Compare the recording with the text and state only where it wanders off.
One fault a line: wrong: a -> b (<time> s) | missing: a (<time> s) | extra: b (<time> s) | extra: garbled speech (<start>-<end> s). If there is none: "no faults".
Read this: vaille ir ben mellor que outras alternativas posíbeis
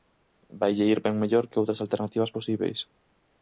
no faults